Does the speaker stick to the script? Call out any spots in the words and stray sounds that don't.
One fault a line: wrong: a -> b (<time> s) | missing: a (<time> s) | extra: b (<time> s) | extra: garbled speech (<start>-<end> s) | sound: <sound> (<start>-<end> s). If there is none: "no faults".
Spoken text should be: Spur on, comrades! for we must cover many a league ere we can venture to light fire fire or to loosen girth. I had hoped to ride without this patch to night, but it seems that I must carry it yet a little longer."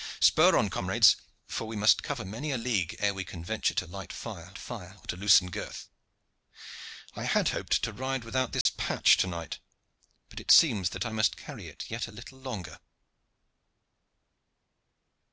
sound: dropout (8.6-8.7 s)